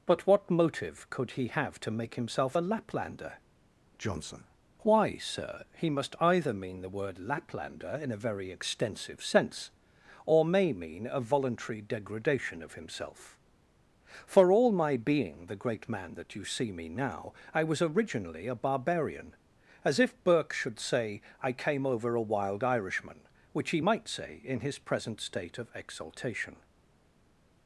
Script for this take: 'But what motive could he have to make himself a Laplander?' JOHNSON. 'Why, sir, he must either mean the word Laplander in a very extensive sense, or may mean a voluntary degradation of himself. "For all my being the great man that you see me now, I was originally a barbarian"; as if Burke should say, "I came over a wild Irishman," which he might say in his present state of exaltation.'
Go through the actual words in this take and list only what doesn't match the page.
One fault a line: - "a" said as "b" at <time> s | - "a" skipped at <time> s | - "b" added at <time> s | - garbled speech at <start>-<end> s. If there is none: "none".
none